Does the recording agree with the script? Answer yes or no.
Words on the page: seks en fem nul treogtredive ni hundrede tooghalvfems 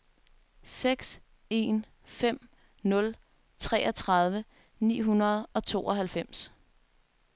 no